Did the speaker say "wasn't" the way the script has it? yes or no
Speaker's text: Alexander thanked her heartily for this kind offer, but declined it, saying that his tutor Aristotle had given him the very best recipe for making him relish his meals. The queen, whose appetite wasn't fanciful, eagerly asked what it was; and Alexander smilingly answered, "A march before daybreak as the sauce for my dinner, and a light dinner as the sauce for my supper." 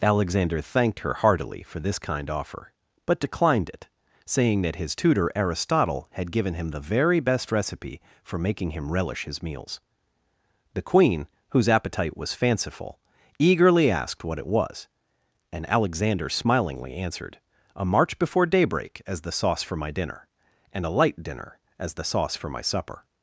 no